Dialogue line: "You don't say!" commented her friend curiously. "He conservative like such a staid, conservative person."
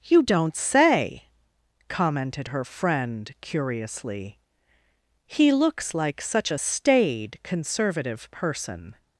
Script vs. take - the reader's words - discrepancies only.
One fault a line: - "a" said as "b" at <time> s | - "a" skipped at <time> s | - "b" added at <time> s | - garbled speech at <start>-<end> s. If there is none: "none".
- "conservative" said as "looks" at 5.5 s